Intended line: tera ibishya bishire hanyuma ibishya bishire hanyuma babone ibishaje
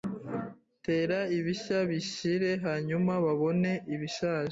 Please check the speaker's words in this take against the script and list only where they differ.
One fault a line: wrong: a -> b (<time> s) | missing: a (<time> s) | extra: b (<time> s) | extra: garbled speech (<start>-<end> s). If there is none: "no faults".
missing: ibishya bishire hanyuma (3.1 s)